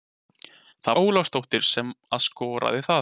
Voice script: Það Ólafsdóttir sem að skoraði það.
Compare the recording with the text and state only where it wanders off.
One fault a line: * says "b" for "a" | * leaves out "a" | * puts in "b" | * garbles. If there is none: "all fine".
all fine